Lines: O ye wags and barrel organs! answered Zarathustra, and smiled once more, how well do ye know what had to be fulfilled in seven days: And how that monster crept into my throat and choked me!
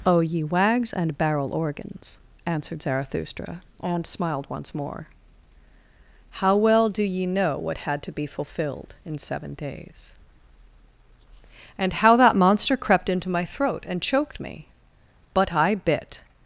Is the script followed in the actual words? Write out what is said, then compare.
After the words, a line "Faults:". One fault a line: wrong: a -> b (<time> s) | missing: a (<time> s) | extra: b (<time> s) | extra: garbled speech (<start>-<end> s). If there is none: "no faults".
O ye wags and barrel organs! answered Zarathustra, and smiled once more, how well do ye know what had to be fulfilled in seven days: And how that monster crept into my throat and choked me! But I bit
Faults:
extra: But I bit (15.3 s)